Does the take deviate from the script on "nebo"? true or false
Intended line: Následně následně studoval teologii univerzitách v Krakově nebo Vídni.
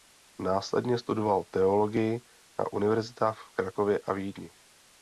true